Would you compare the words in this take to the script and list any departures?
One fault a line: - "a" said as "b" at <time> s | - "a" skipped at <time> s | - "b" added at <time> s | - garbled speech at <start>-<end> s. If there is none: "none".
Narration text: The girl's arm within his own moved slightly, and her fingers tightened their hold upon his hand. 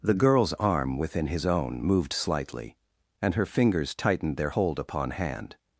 - "his" skipped at 5.1 s